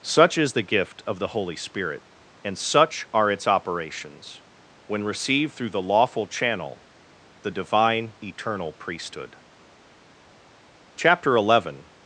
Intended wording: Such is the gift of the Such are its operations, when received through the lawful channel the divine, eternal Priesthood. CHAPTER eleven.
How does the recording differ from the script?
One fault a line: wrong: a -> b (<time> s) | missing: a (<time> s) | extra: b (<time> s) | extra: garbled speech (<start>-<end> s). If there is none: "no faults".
extra: Holy Spirit and (1.3 s)